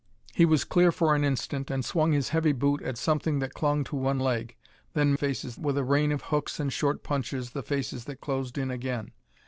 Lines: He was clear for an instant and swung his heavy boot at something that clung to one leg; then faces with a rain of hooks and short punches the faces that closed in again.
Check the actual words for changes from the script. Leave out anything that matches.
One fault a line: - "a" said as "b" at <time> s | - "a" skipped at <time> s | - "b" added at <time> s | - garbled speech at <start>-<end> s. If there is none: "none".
none